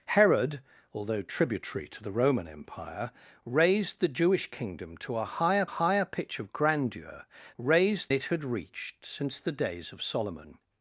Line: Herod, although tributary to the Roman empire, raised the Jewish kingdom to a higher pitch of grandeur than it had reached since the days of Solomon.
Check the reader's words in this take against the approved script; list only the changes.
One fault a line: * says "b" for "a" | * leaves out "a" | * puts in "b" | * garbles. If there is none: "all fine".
* puts in "higher"
* says "raised" for "than"